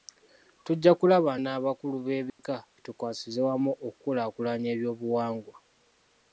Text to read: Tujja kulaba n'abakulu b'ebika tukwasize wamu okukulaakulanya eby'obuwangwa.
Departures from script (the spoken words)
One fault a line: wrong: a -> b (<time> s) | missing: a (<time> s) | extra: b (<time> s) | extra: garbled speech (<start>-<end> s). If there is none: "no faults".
no faults